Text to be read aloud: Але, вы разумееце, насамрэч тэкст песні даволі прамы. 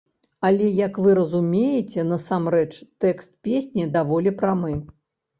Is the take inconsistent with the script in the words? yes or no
yes